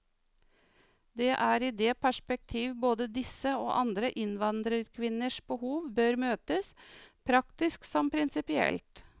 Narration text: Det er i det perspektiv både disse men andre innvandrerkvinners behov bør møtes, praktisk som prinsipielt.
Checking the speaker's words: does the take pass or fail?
fail